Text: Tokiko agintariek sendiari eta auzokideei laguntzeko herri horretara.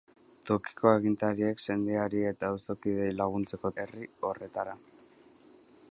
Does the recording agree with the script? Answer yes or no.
yes